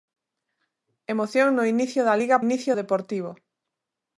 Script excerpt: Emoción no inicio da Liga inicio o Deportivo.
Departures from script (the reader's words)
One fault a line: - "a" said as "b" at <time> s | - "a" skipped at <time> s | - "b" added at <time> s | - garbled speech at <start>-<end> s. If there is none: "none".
none